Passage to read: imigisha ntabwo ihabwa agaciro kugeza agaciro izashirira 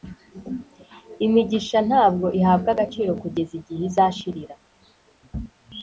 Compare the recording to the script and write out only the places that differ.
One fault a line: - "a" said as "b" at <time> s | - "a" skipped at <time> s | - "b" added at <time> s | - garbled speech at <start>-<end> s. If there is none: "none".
- "agaciro" said as "igihe" at 3.6 s